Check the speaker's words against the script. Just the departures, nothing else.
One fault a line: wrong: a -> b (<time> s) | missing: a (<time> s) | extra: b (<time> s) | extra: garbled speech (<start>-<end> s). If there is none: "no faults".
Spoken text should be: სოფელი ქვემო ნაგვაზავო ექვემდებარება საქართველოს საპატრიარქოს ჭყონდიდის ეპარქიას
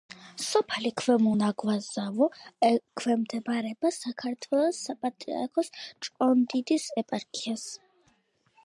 no faults